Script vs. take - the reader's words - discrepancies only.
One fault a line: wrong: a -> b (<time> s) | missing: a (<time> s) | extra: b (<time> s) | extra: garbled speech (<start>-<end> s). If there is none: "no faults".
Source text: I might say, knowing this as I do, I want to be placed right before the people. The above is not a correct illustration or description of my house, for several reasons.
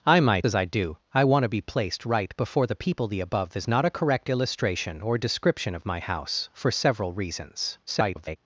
missing: say knowing this (0.5 s)
extra: garbled speech (7.9-8.4 s)